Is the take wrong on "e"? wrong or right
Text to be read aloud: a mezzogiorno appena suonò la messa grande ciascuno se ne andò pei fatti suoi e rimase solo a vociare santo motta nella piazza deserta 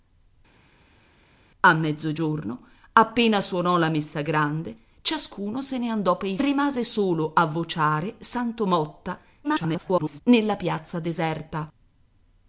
wrong